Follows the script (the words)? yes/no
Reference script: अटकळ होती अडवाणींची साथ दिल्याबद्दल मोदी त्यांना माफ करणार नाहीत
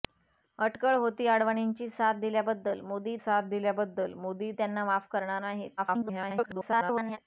no